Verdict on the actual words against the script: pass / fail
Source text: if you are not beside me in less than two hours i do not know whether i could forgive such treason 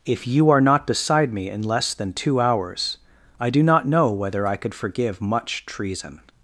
fail